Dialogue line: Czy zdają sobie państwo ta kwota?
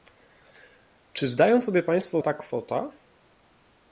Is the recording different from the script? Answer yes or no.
no